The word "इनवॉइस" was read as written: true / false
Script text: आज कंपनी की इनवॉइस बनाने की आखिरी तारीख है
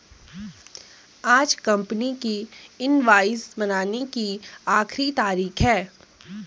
true